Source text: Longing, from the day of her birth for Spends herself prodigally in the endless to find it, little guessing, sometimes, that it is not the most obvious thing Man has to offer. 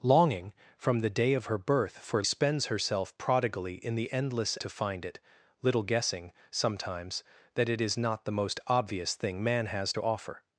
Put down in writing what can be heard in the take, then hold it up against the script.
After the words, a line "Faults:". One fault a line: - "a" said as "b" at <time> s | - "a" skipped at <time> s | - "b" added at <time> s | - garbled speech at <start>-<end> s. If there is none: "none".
Longing, from the day of her birth for Spends herself prodigally in the endless to find it, little guessing, sometimes, that it is not the most obvious thing Man has to offer.
Faults:
none